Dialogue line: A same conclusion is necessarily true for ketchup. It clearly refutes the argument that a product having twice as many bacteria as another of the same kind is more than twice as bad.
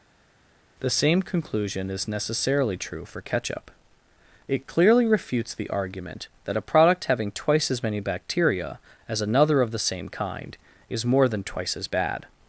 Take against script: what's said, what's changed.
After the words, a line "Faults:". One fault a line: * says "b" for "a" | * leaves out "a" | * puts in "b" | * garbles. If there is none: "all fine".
The same conclusion is necessarily true for ketchup. It clearly refutes the argument that a product having twice as many bacteria as another of the same kind is more than twice as bad.
Faults:
* says "The" for "A"